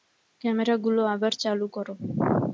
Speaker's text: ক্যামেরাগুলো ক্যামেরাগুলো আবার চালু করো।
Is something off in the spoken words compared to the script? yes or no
yes